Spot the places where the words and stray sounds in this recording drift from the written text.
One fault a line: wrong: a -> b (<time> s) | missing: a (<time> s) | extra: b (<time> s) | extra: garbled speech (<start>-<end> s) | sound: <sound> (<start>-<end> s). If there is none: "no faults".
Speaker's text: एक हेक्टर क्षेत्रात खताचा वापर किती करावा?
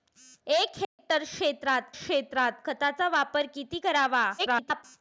sound: dropout (0.8-1.0 s)
extra: क्षेत्रात (1.9 s)
extra: garbled speech (4.4-4.8 s)